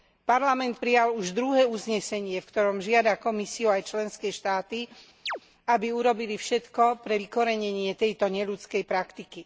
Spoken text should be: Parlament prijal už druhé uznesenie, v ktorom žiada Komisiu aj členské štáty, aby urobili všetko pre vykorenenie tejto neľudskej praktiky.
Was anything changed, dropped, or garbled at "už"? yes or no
no